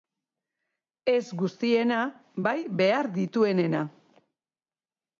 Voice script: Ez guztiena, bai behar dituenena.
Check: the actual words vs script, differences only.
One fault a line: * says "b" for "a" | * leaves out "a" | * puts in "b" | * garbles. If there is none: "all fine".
all fine